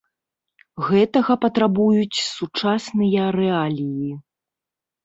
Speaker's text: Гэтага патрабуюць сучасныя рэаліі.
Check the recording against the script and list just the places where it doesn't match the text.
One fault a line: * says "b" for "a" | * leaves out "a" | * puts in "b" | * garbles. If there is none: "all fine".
all fine